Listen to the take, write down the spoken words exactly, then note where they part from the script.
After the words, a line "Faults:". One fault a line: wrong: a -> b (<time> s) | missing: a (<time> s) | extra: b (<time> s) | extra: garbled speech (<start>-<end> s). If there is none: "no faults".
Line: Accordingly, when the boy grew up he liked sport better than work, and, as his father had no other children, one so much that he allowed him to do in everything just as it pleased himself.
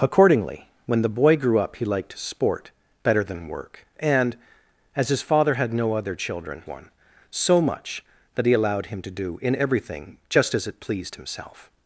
Accordingly, when the boy grew up he liked sport better than work, and, as his father had no other children, one so much that he allowed him to do in everything just as it pleased himself.
Faults:
no faults